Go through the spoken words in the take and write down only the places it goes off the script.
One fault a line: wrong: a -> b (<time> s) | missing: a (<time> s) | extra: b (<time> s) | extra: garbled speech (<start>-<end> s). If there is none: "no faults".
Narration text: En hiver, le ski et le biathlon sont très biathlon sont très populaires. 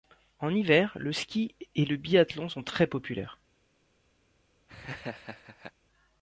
missing: biathlon sont très (2.9 s)